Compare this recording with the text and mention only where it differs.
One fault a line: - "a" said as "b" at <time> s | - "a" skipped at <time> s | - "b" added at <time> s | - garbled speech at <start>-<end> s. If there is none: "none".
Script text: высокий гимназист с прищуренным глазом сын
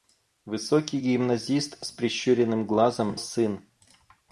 none